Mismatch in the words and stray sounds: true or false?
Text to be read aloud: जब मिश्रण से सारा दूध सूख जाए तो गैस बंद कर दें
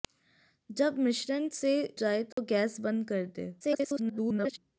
true